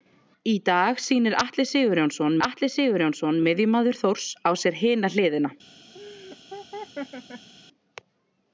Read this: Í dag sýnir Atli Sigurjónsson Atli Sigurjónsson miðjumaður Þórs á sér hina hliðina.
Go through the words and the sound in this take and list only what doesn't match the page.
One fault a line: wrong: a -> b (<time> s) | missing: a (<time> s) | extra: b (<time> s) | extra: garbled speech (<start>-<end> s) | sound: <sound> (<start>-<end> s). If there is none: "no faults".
sound: laugh (5.9-7.5 s)